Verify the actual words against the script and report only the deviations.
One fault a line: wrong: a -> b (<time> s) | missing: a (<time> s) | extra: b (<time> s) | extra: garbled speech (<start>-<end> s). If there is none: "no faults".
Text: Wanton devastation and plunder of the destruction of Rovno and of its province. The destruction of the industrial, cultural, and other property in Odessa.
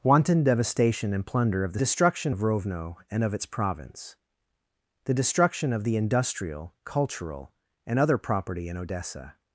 no faults